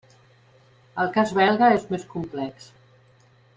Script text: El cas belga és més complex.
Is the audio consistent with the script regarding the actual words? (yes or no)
yes